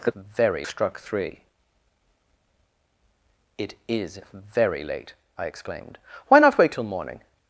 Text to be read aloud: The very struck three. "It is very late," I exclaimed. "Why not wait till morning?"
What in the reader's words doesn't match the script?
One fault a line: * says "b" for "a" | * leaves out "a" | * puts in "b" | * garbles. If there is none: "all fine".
all fine